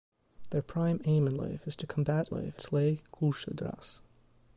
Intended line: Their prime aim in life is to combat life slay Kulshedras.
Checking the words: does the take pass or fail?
pass